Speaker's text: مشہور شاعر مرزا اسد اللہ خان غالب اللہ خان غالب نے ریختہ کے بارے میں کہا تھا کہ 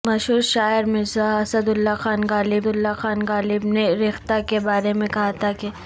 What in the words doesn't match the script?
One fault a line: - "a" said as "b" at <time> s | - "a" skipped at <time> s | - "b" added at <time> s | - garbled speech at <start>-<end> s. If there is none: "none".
none